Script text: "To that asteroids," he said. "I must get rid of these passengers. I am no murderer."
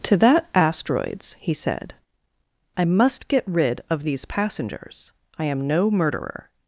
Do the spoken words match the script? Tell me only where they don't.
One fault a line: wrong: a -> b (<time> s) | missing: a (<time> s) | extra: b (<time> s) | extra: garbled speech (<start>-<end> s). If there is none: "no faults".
no faults